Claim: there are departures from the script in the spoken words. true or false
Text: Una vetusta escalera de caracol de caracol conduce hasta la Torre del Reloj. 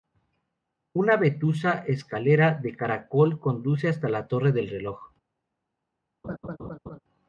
true